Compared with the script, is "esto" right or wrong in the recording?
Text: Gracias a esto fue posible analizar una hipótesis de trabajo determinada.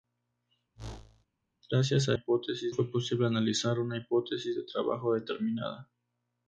wrong